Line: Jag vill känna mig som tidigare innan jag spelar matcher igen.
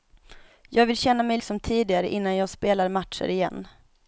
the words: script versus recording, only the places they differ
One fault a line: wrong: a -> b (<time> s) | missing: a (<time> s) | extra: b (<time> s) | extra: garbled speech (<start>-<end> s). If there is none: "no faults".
no faults